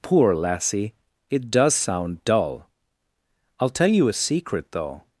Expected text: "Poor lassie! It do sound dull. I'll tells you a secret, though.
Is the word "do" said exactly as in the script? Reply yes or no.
no